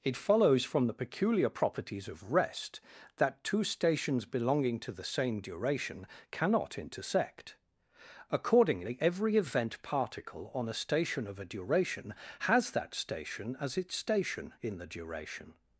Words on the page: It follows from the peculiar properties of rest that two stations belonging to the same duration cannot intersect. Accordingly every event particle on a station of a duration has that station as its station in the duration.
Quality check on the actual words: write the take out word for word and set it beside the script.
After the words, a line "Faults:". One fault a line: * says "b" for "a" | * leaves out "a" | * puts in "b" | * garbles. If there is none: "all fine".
It follows from the peculiar properties of rest that two stations belonging to the same duration cannot intersect. Accordingly every event particle on a station of a duration has that station as its station in the duration.
Faults:
all fine